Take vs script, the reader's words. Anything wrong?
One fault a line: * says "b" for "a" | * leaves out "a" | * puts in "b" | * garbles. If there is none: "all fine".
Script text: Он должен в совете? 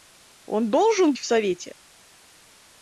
all fine